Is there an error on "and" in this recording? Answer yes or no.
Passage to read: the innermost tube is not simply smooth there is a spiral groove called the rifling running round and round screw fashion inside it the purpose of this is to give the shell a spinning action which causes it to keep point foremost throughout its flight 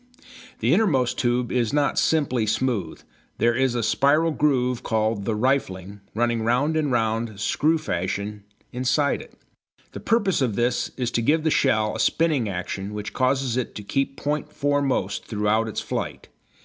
no